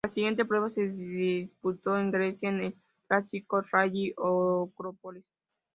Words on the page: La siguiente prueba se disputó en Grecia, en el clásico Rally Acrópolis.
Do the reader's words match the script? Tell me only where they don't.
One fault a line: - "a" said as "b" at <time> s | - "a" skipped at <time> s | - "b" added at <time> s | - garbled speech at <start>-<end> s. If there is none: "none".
none